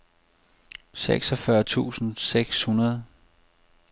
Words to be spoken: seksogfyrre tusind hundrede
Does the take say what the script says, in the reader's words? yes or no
no